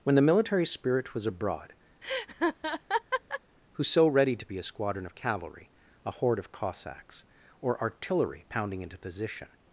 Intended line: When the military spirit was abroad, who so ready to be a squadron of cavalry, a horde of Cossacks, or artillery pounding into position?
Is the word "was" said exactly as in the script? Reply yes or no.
yes